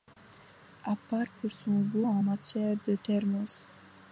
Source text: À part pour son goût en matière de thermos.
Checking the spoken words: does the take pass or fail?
pass